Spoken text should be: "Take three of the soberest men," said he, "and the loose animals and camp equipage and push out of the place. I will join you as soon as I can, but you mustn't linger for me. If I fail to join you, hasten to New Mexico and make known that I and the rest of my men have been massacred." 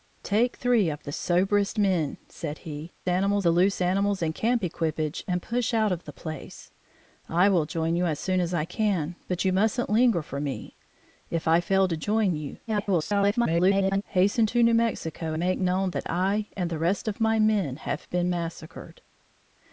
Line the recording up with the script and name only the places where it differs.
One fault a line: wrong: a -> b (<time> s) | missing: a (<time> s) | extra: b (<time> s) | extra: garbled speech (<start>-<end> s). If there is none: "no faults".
wrong: and -> animals (3.1 s)
extra: garbled speech (12.7-14.0 s)
missing: and (15.3 s)